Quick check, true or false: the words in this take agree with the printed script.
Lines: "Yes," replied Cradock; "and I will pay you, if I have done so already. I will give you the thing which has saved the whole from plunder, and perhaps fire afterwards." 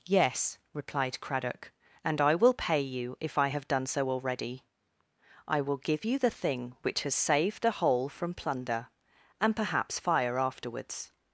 true